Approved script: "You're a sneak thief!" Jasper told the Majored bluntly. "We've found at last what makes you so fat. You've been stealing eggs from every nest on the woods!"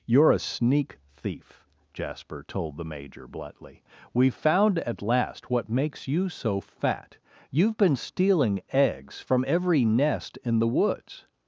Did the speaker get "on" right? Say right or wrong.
wrong